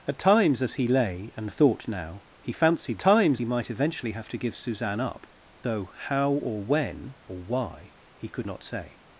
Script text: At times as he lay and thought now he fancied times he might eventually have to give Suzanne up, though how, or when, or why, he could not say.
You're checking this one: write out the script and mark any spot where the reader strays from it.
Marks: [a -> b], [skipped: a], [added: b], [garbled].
At times as he lay and thought now he fancied times he might eventually have to give Suzanne up, though how, or when, or why, he could not say.